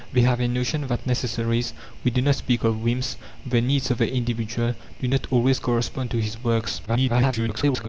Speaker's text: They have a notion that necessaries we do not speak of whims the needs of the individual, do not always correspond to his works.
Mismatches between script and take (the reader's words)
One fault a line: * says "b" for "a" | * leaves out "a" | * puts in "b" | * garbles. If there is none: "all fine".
* garbles